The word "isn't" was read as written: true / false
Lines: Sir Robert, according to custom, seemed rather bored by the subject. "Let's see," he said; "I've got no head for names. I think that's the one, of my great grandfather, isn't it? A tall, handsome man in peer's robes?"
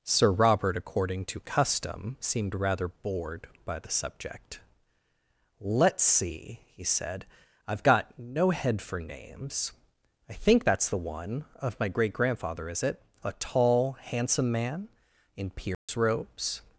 false